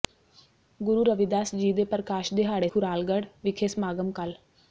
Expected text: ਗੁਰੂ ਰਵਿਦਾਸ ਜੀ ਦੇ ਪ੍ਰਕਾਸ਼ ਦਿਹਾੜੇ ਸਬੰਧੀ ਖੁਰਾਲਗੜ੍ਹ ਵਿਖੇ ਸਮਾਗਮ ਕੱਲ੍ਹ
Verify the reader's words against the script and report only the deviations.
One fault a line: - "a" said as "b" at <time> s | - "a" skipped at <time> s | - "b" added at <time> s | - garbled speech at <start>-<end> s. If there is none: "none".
- "ਸਬੰਧੀ" skipped at 2.7 s